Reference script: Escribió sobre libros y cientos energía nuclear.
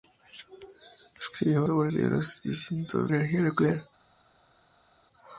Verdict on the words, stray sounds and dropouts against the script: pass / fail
pass